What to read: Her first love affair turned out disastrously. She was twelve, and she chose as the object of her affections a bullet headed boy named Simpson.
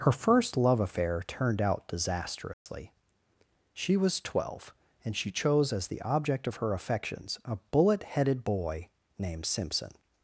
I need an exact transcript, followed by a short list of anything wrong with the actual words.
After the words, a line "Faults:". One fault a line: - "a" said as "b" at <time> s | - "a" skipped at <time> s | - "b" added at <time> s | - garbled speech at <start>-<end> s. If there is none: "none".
Her first love affair turned out disastrously. She was twelve, and she chose as the object of her affections a bullet headed boy named Simpson.
Faults:
none